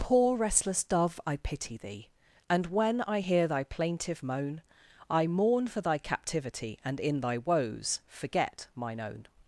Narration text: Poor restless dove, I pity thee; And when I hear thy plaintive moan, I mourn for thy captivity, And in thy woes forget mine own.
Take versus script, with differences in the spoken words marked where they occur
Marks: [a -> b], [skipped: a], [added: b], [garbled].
Poor restless dove, I pity thee; And when I hear thy plaintive moan, I mourn for thy captivity, And in thy woes forget mine own.